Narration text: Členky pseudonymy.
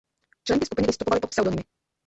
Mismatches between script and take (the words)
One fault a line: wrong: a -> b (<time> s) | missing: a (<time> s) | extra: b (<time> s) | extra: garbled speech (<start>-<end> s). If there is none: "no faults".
extra: skupiny vystupovaly pod (0.7 s)